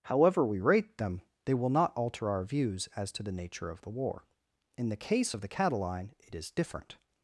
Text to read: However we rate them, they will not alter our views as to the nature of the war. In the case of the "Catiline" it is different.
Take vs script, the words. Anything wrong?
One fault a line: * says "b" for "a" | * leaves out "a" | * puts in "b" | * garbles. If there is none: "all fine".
all fine